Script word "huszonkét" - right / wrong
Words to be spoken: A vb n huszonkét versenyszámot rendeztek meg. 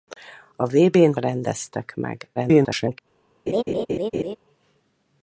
wrong